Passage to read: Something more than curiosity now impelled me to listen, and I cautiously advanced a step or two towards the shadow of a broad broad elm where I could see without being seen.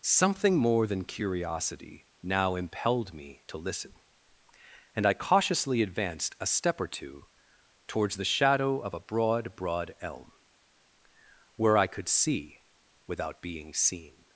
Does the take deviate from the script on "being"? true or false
false